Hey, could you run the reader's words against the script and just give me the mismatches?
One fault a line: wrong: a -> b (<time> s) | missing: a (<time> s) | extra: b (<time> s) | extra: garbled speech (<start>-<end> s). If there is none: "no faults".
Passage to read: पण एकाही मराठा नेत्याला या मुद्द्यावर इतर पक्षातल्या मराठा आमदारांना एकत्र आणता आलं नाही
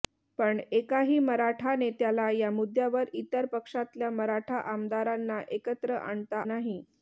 missing: आलं (6.4 s)